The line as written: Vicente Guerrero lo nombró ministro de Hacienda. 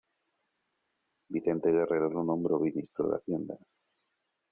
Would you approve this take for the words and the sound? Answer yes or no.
yes